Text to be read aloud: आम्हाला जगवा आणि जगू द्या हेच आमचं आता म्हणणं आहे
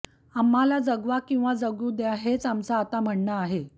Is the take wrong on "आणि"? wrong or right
wrong